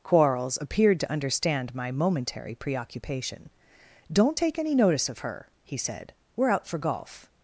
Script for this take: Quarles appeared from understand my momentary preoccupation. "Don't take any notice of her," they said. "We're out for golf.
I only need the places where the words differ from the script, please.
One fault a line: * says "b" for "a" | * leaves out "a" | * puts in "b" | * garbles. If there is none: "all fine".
* says "to" for "from"
* says "he" for "they"